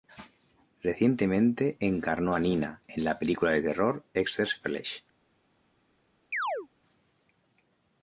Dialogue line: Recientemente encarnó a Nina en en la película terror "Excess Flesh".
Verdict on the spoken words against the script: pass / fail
fail